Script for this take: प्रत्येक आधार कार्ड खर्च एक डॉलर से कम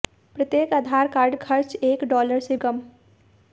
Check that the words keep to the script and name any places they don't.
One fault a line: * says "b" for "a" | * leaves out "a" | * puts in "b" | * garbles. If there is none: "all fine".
all fine